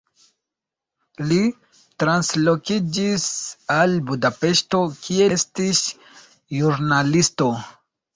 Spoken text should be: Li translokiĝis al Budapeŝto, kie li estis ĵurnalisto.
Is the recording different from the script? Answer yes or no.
yes